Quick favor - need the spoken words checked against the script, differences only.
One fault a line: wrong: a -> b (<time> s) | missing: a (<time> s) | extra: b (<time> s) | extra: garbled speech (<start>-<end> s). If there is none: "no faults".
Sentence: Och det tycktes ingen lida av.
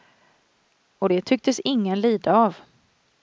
no faults